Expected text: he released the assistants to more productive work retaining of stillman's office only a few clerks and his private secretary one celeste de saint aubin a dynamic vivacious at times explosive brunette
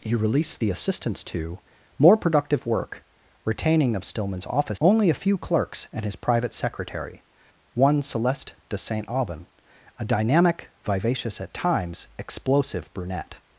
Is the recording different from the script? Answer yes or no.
no